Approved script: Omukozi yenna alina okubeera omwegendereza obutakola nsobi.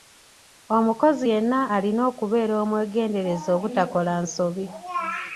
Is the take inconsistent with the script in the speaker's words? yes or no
no